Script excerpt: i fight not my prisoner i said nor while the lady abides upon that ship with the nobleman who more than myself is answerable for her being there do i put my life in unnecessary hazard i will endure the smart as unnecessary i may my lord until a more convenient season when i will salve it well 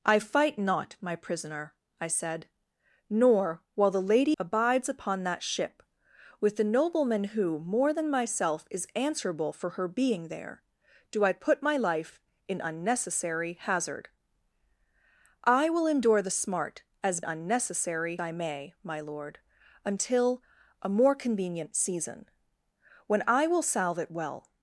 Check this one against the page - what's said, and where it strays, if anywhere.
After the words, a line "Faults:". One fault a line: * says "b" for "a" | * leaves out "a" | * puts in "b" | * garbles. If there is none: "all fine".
i fight not my prisoner i said nor while the lady abides upon that ship with the nobleman who more than myself is answerable for her being there do i put my life in unnecessary hazard i will endure the smart as unnecessary i may my lord until a more convenient season when i will salve it well
Faults:
all fine